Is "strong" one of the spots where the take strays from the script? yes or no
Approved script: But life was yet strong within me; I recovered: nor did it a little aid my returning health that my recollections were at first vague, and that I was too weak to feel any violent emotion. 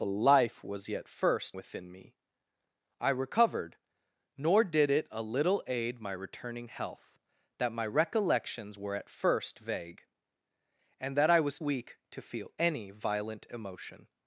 yes